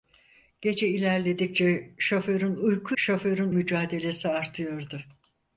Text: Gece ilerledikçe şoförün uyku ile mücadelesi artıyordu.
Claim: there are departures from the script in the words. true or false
true